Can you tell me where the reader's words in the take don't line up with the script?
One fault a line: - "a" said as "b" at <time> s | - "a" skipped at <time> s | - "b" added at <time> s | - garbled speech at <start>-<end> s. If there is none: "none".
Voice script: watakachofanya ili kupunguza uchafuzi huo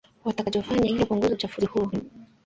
none